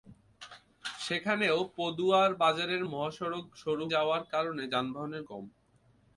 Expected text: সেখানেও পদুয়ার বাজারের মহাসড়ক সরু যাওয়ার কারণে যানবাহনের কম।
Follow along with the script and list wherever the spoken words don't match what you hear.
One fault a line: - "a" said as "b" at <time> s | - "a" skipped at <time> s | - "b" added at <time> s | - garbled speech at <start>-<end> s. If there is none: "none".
none